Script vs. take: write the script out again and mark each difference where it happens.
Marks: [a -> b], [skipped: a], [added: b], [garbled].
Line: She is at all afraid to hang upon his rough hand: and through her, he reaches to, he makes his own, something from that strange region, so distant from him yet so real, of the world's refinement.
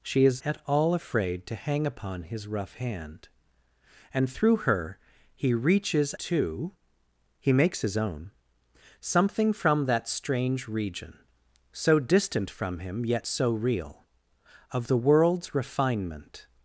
She is at all afraid to hang upon his rough hand: and through her, he reaches to, he makes his own, something from that strange region, so distant from him yet so real, of the world's refinement.